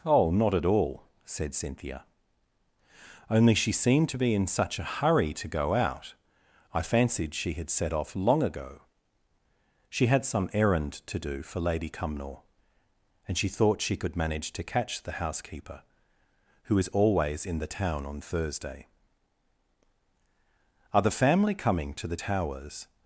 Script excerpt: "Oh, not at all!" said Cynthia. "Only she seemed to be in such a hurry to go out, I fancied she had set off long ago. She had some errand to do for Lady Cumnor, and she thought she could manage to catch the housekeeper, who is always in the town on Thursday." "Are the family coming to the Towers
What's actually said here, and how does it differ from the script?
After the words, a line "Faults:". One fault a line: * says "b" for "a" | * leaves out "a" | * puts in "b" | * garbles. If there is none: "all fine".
"Oh, not at all!" said Cynthia. "Only she seemed to be in such a hurry to go out, I fancied she had set off long ago. She had some errand to do for Lady Cumnor, and she thought she could manage to catch the housekeeper, who is always in the town on Thursday." "Are the family coming to the Towers
Faults:
all fine